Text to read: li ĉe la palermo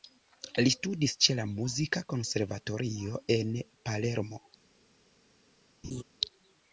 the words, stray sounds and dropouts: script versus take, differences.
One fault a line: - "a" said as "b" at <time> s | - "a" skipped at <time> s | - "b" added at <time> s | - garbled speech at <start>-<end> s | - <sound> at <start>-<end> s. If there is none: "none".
- "studis" added at 0.8 s
- "muzika konservatorio en" added at 1.5 s
- laugh at 5.8-6.0 s